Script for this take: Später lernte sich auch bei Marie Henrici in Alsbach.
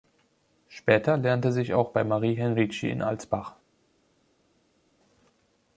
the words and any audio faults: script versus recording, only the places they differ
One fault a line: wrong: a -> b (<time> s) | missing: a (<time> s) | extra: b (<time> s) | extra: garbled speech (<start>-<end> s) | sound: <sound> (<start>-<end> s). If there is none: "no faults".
no faults